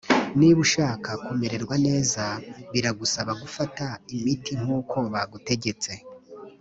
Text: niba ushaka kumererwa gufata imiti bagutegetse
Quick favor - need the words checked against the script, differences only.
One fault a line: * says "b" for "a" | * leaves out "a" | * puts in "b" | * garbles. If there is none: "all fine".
* puts in "neza biragusaba"
* puts in "nkuko"